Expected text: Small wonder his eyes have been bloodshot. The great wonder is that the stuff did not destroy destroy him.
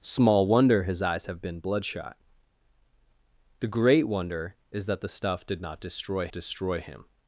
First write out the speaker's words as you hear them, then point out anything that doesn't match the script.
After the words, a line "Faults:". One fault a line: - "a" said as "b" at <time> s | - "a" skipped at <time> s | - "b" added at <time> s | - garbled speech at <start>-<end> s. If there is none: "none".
Small wonder his eyes have been bloodshot. The great wonder is that the stuff did not destroy destroy him.
Faults:
none